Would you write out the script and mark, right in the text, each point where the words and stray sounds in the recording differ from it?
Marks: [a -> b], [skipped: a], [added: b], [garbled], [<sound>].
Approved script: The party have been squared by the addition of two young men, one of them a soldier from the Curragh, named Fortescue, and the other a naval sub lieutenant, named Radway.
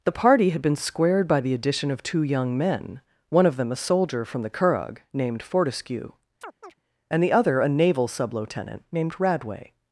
The party [have -> had] been squared by the addition of two young men, one of them a soldier from the Curragh, named Fortescue, [chirp] and the other a naval sub lieutenant, named Radway.